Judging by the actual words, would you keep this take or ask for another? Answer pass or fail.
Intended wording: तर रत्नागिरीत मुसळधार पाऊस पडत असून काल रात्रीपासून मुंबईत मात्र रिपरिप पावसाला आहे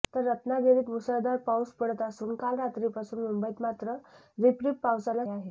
pass